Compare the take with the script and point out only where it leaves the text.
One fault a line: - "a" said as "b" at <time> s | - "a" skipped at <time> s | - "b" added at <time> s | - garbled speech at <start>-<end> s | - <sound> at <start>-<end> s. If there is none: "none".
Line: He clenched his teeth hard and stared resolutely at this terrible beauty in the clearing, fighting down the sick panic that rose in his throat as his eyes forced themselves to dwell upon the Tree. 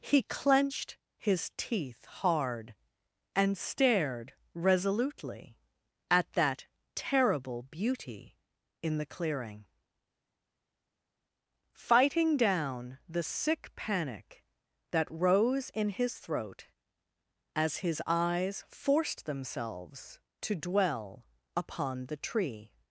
- "this" said as "that" at 6.3 s